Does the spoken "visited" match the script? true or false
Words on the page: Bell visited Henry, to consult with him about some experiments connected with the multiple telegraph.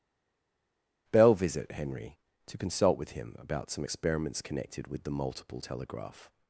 false